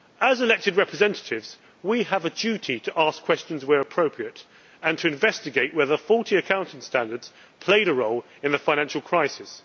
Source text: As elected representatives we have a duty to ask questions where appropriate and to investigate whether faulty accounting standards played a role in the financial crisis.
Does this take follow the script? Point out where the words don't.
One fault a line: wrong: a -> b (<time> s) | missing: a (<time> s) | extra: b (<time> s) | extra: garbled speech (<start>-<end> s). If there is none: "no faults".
no faults